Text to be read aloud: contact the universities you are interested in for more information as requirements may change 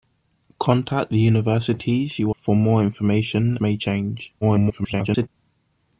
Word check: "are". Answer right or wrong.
wrong